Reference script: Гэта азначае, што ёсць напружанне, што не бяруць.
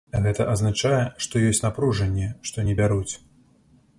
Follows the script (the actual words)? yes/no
yes